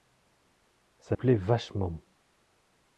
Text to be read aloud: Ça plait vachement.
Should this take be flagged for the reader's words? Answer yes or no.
no